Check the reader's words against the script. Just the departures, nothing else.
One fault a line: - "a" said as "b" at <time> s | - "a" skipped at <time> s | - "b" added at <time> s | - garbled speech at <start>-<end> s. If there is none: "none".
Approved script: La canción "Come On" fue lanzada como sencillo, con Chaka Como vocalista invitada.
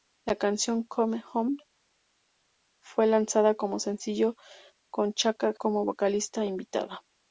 none